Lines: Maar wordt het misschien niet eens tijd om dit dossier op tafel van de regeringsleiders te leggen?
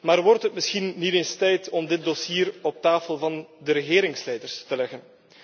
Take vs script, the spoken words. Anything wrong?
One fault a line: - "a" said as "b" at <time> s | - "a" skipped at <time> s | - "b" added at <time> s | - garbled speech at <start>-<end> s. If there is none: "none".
none